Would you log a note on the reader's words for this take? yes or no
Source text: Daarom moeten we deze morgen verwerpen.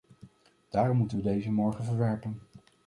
no